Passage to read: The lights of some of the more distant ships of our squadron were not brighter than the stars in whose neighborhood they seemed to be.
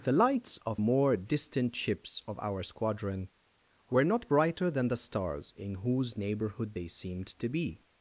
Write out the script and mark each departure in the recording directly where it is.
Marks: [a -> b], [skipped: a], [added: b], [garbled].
The lights of [skipped: some of the] more distant ships of our squadron were not brighter than the stars in whose neighborhood they seemed to be.